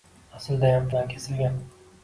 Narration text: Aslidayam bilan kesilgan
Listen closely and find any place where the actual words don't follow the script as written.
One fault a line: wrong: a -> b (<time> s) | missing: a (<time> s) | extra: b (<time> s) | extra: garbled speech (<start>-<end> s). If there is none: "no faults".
no faults